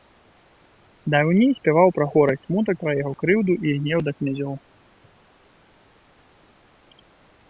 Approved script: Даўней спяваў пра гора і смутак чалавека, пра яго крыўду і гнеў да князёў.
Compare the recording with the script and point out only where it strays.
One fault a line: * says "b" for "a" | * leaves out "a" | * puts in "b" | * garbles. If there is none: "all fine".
* leaves out "чалавека"